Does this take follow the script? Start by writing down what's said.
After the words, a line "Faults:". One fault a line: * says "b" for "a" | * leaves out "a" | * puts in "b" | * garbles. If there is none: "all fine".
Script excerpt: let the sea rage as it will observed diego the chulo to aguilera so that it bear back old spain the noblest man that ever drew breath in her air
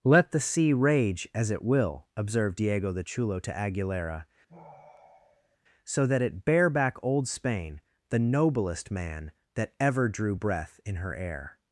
let the sea rage as it will observed diego the chulo to aguilera so that it bear back old spain the noblest man that ever drew breath in her air
Faults:
all fine